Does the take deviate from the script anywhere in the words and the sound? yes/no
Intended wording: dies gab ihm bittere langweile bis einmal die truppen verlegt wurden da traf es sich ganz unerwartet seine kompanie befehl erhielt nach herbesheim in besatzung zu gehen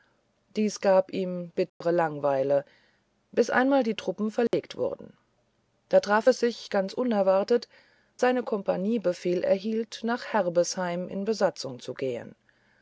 yes